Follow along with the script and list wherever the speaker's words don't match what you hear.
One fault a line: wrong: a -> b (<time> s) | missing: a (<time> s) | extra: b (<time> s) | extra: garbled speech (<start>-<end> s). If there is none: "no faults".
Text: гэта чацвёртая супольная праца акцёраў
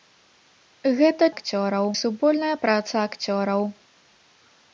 wrong: чацвёртая -> акцёраў (1.3 s)